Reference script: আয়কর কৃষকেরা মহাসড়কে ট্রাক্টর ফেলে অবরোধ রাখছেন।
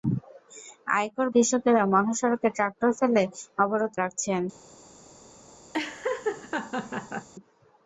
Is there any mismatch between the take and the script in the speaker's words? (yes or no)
no